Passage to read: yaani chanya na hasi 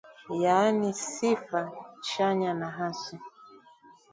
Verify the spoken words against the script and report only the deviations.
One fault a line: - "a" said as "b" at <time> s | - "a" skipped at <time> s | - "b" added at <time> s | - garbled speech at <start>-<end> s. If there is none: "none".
- "sifa" added at 0.9 s